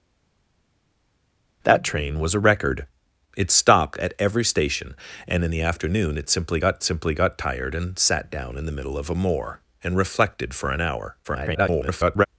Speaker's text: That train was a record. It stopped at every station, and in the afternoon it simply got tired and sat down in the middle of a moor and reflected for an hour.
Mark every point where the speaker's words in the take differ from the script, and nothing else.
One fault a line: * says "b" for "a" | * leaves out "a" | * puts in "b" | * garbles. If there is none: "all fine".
* puts in "simply got"
* garbles